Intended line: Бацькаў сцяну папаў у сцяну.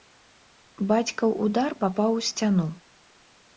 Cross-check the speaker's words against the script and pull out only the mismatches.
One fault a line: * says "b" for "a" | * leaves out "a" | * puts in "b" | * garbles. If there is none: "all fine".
* says "удар" for "сцяну"